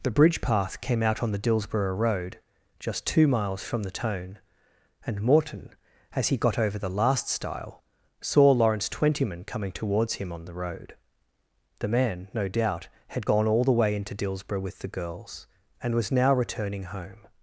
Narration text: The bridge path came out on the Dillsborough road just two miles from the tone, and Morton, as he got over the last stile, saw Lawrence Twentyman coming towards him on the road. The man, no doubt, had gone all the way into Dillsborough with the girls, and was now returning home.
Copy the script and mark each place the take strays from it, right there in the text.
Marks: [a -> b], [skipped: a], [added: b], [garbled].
The bridge path came out on the Dillsborough road just two miles from the tone, and Morton, as he got over the last stile, saw Lawrence Twentyman coming towards him on the road. The man, no doubt, had gone all the way into Dillsborough with the girls, and was now returning home.